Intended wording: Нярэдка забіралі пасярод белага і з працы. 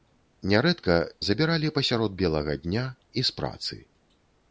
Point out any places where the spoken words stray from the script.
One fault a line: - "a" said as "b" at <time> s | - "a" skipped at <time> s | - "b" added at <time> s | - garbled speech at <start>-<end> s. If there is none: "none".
- "дня" added at 2.7 s